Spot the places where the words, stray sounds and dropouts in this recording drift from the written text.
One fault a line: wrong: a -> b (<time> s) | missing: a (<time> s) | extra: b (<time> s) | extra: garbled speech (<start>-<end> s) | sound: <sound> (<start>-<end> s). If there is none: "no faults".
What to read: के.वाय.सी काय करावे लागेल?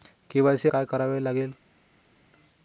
no faults